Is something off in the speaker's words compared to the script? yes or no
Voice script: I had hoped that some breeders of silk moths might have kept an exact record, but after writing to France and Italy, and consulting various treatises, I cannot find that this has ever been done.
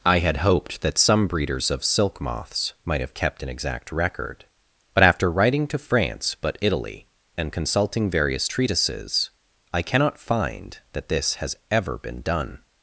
yes